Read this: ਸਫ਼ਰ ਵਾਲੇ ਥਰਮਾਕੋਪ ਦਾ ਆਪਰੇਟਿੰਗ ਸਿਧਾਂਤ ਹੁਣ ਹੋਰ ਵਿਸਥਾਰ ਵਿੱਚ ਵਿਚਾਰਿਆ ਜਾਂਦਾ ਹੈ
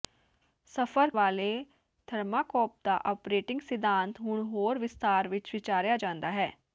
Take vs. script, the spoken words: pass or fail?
pass